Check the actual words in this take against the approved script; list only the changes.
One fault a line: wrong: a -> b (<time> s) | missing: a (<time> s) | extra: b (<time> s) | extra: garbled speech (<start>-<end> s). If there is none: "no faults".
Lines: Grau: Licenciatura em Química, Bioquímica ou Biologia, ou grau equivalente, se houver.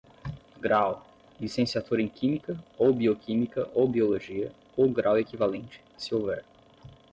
extra: ou (2.8 s)